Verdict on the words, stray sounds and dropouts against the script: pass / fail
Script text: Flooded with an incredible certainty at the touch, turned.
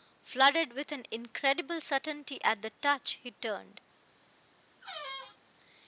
fail